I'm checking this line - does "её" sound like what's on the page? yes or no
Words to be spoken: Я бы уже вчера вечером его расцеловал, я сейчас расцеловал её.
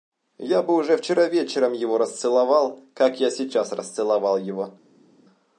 no